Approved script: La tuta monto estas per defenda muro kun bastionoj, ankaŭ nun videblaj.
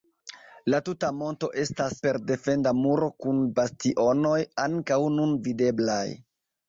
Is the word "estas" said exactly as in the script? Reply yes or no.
yes